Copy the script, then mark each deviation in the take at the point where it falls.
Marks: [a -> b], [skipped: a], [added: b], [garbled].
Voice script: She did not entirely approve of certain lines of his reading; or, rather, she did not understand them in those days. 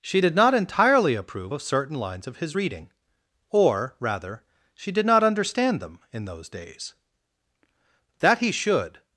She did not entirely approve of certain lines of his reading; or, rather, she did not understand them in those days. [added: That he should]